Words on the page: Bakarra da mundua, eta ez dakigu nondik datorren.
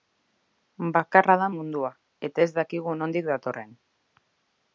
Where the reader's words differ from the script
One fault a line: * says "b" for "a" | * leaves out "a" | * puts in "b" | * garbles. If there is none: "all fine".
all fine